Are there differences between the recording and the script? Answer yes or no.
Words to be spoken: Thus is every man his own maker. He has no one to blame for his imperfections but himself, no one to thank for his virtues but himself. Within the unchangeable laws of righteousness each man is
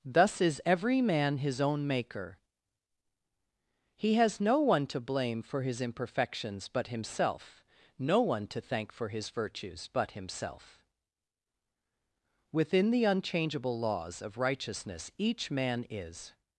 no